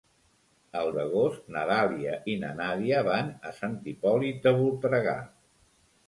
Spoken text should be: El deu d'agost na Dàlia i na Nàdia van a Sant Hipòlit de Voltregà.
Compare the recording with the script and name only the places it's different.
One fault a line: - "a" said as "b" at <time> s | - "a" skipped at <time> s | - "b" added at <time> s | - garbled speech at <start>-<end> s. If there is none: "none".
- "deu" skipped at 0.9 s